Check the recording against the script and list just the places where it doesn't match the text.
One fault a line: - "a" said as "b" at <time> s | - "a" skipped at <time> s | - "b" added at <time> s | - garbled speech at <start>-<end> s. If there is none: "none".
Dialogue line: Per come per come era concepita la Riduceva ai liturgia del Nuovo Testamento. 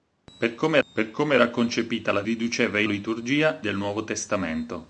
none